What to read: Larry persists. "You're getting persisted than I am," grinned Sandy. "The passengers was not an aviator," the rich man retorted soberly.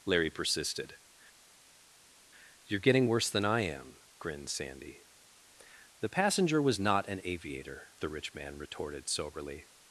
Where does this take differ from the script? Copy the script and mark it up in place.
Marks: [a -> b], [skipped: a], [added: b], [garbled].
Larry [persists. -> persisted] "You're getting [persisted -> worse] than I am," grinned Sandy. "The [passengers -> passenger] was not an aviator," the rich man retorted soberly.